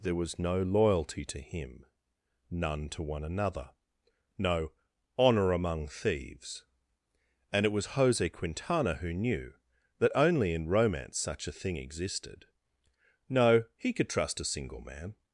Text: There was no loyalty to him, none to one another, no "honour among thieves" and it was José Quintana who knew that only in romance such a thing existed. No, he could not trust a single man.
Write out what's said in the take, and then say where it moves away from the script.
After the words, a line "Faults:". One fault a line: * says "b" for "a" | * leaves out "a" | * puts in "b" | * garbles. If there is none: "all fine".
There was no loyalty to him, none to one another, no "honour among thieves" and it was José Quintana who knew that only in romance such a thing existed. No, he could trust a single man.
Faults:
* leaves out "not"